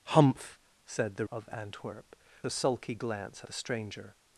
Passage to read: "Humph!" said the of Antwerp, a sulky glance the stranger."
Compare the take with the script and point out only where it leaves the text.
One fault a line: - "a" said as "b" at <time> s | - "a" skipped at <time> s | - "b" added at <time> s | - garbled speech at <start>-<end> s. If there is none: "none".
none